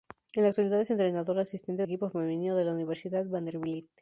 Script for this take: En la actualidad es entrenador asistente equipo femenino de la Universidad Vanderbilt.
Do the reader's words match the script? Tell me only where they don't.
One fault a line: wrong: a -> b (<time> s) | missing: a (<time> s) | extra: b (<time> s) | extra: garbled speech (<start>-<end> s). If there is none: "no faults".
no faults